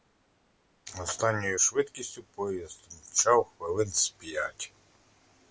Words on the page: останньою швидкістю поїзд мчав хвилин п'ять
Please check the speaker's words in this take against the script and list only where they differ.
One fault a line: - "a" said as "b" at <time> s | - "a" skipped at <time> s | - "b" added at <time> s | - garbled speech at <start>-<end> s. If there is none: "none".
- "з" added at 3.9 s